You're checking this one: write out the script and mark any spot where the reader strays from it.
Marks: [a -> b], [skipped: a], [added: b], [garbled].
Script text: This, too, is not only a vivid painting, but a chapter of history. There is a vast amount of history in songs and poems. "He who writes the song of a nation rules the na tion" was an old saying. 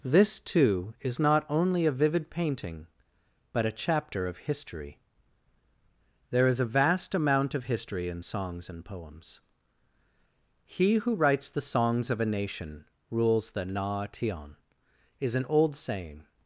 This, too, is not only a vivid painting, but a chapter of history. There is a vast amount of history in songs and poems. "He who writes the [song -> songs] of a nation rules the na tion" [was -> is] an old saying.